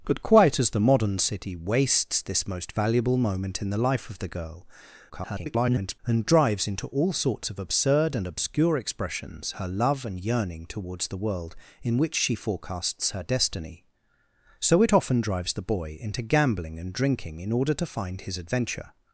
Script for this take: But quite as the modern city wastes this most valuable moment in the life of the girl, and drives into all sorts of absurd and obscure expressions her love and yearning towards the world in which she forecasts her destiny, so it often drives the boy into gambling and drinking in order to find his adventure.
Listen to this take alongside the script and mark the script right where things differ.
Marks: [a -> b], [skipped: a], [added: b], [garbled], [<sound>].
But quite as the modern city wastes this most valuable moment in the life of the girl, [garbled] and drives into all sorts of absurd and obscure expressions her love and yearning towards the world in which she forecasts her destiny, so it often drives the boy into gambling and drinking in order to find his adventure.